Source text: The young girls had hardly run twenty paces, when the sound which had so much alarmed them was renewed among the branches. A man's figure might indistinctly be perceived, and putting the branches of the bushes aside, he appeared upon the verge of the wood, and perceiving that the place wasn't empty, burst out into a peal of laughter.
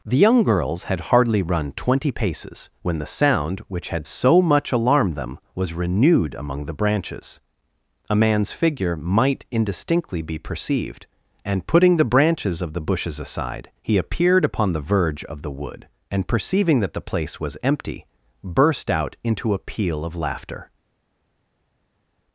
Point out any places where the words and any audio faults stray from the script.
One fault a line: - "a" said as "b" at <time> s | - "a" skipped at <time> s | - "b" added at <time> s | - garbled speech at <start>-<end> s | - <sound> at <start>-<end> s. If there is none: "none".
- "wasn't" said as "was" at 17.4 s